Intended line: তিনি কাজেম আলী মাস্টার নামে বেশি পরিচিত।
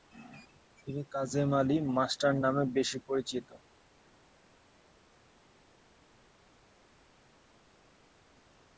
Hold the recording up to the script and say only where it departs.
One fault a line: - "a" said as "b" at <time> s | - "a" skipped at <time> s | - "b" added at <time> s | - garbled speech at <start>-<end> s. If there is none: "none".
none